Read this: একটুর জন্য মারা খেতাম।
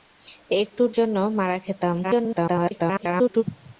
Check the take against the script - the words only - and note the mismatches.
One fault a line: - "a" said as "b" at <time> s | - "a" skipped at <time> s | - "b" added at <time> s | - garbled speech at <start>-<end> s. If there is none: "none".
- garbled speech at 2.0-3.4 s